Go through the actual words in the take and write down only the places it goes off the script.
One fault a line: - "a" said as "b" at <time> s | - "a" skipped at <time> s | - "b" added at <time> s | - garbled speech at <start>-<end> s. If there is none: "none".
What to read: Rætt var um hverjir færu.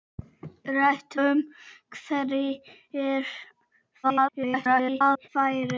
- "var" skipped at 1.1 s
- garbled speech at 4.0-5.3 s